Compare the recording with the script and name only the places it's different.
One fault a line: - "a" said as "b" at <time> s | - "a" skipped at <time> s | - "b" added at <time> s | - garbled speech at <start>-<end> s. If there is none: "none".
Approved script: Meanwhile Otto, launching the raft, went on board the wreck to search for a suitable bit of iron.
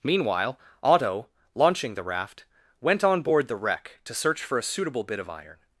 none